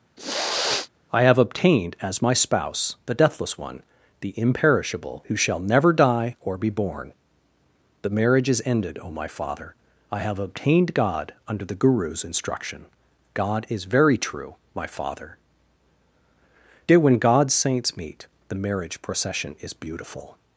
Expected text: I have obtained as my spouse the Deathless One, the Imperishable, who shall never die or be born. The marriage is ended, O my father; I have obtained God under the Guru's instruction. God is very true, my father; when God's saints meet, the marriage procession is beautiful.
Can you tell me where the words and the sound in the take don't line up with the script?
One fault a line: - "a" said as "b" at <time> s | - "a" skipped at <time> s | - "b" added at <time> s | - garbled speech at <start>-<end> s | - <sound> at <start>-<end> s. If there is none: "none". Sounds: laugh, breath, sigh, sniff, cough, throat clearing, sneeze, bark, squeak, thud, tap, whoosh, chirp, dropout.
- sniff at 0.2-0.9 s
- "dear" added at 16.9 s